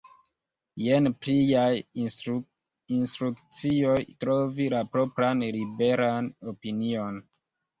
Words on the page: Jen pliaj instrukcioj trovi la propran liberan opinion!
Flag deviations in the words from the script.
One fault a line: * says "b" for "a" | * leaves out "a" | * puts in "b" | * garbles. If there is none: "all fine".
all fine